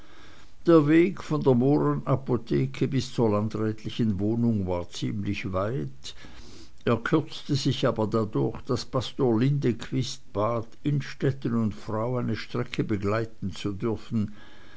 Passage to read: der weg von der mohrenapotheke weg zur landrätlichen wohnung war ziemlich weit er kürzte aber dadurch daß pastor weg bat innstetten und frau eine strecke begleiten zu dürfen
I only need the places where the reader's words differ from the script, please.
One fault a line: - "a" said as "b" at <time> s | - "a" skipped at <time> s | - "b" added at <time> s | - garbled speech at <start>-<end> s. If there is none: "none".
- "weg" said as "bis" at 2.9 s
- "sich" added at 7.5 s
- "weg" said as "lindequist" at 9.4 s